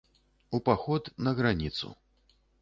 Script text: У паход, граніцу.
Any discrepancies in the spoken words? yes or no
yes